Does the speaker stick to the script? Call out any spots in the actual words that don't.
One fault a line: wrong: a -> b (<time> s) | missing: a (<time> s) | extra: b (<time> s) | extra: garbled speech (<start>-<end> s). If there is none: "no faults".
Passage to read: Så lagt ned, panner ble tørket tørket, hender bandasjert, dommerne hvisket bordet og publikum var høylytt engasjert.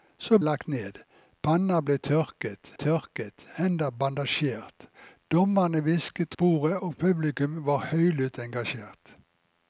no faults